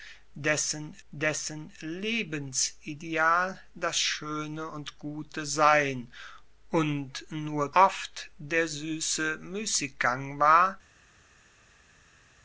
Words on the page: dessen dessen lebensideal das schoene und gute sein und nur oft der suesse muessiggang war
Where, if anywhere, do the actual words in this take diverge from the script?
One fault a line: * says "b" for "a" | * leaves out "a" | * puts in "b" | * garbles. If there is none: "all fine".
all fine